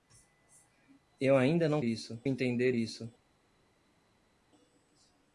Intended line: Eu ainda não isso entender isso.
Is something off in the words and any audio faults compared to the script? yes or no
no